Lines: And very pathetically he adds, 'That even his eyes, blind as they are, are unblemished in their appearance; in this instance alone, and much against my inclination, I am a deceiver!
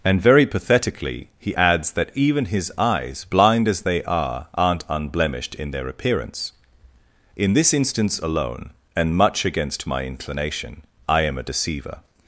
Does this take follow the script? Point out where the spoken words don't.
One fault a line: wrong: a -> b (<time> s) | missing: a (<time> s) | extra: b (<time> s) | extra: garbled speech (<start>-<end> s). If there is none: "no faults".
wrong: are -> aren't (4.5 s)